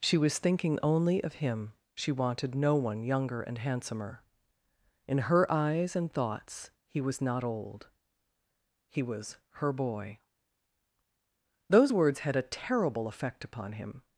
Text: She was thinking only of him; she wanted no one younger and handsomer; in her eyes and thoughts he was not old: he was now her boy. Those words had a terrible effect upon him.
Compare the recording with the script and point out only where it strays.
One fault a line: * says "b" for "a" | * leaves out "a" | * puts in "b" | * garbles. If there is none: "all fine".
* leaves out "now"